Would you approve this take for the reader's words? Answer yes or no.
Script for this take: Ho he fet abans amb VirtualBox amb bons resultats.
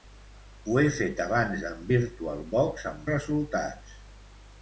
no